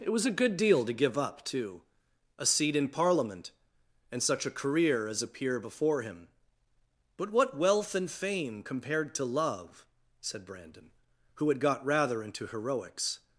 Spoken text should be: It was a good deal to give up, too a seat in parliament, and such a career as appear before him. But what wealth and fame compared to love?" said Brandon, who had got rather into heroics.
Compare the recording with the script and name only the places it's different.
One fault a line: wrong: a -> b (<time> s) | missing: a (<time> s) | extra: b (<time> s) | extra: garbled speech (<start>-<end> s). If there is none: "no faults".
no faults